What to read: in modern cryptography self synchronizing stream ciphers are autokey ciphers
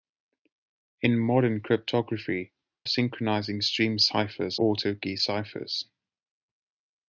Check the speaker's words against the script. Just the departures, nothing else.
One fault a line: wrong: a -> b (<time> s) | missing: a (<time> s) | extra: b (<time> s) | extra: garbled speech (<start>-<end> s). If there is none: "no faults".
missing: self (2.5 s)
missing: are (4.6 s)